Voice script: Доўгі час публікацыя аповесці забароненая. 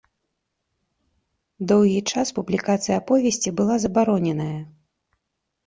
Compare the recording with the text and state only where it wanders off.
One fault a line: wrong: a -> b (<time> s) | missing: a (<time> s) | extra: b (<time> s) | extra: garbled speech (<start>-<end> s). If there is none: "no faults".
extra: была (3.6 s)